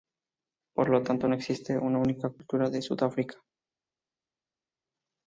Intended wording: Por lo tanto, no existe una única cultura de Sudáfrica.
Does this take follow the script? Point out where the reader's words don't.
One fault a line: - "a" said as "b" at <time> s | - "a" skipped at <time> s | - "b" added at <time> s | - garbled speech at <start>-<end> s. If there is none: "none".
none